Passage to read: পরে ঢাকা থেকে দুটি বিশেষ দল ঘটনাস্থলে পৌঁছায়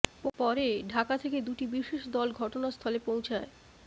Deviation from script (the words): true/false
false